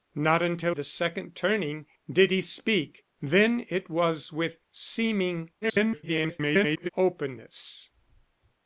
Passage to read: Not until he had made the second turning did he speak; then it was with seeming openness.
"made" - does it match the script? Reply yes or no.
no